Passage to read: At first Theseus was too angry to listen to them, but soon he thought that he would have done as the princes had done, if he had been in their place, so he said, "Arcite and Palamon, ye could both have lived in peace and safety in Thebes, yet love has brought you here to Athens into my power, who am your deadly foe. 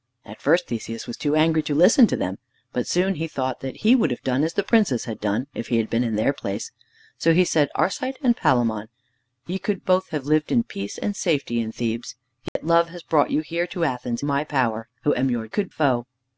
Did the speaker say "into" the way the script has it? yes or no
no